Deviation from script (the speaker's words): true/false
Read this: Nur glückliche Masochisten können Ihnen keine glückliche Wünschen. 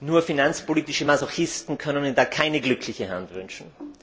true